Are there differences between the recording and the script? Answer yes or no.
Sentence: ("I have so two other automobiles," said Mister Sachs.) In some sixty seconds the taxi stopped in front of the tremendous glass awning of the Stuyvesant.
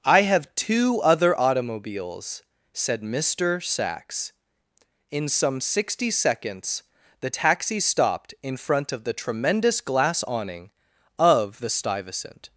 yes